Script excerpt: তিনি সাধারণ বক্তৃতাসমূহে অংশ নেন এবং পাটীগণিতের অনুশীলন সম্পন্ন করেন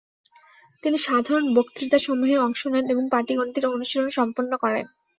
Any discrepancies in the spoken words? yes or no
no